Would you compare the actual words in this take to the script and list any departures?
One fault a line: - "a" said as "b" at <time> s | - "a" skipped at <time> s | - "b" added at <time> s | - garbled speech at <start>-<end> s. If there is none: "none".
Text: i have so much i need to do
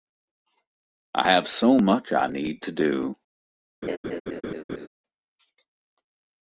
none